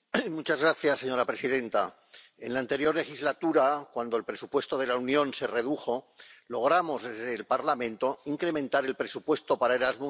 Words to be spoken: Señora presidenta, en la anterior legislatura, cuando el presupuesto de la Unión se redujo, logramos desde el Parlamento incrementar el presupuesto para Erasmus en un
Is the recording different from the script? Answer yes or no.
no